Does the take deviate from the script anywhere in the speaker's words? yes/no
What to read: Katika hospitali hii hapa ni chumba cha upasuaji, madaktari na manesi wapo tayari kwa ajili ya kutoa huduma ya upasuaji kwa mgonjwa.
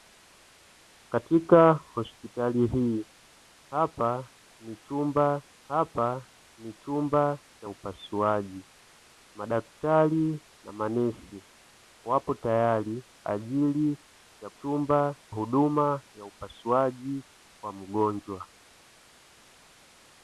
yes